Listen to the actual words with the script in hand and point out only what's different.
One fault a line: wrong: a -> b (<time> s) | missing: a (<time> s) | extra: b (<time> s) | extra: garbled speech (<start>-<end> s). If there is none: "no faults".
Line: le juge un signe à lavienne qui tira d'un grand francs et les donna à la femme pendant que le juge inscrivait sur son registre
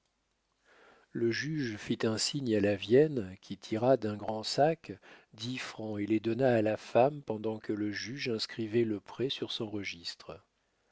extra: fit (1.8 s)
extra: sac dix (4.4 s)
extra: le prêt (8.9 s)